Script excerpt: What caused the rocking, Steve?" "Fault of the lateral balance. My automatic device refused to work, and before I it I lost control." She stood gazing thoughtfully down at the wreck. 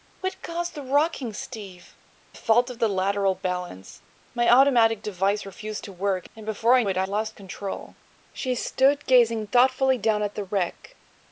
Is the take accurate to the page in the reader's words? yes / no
yes